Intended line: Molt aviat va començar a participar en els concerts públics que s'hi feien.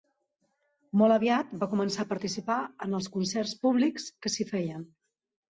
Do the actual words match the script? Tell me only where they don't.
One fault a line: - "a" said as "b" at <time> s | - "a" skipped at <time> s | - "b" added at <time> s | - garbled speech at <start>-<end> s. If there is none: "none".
none